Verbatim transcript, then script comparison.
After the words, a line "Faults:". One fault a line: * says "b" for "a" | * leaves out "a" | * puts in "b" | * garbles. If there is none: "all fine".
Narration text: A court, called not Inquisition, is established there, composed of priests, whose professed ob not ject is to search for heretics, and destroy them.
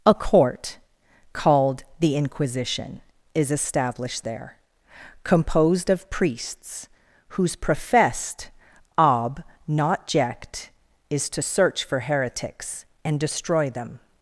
A court, called the Inquisition, is established there, composed of priests, whose professed ob not ject is to search for heretics, and destroy them.
Faults:
* says "the" for "not"